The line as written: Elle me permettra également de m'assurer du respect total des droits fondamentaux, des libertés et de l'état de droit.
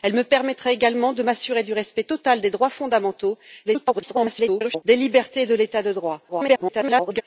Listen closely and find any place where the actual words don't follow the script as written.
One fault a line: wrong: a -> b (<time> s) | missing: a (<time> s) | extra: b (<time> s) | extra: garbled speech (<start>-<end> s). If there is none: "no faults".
extra: garbled speech (3.7-4.8 s)
extra: garbled speech (6.3-7.2 s)